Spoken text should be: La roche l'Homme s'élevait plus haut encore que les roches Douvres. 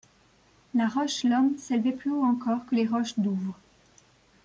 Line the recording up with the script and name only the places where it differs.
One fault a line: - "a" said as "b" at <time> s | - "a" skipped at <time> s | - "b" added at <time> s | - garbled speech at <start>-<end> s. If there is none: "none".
none